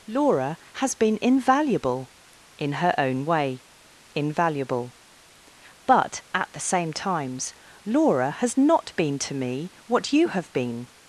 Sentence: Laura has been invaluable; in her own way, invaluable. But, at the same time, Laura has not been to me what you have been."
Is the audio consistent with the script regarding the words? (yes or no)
no